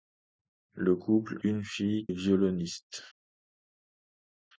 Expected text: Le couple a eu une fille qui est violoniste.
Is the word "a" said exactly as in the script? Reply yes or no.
no